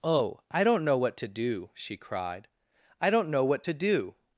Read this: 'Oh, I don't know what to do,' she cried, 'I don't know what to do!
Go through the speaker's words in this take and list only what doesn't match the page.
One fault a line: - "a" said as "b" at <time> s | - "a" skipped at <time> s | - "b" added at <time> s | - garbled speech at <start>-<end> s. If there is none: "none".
none